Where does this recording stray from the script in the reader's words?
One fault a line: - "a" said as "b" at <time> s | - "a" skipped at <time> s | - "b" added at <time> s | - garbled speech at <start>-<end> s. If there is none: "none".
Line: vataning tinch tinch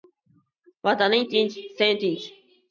- "sen" added at 1.8 s